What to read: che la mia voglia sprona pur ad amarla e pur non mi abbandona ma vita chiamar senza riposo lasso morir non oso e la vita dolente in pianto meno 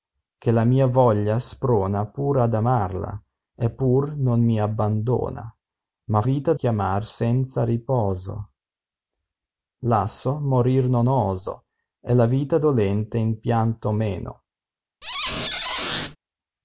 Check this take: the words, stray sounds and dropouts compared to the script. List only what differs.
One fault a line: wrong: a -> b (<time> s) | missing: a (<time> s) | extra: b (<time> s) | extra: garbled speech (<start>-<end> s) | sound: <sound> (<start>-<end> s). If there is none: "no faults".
sound: squeak (15.0-16.2 s)